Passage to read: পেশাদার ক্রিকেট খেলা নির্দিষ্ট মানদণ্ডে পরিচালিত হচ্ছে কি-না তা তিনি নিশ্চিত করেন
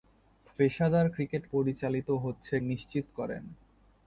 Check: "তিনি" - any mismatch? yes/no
yes